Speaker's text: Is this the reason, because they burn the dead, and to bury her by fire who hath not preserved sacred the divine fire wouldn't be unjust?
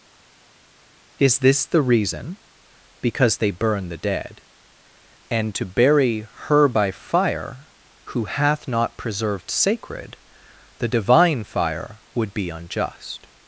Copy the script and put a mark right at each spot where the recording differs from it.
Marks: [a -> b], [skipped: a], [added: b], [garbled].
Is this the reason, because they burn the dead, and to bury her by fire who hath not preserved sacred the divine fire [wouldn't -> would] be unjust?